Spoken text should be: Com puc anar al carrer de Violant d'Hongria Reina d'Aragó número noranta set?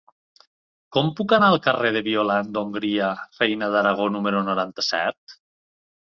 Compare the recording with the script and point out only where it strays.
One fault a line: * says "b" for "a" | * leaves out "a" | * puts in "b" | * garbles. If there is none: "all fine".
all fine